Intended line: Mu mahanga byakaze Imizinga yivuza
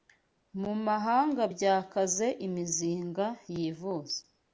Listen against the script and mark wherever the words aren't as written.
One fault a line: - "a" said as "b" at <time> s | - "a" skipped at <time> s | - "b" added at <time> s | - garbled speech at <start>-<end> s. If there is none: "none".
none